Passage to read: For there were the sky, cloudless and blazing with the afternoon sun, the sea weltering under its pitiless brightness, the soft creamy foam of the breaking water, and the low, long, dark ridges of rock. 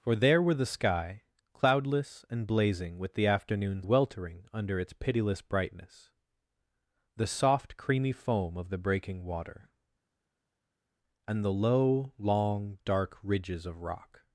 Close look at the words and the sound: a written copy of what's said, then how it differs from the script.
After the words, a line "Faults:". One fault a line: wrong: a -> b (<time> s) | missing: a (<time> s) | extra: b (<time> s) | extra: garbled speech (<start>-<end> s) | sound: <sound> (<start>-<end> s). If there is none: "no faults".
For there were the sky, cloudless and blazing with the afternoon weltering under its pitiless brightness, the soft creamy foam of the breaking water, and the low, long, dark ridges of rock.
Faults:
missing: sun the sea (3.8 s)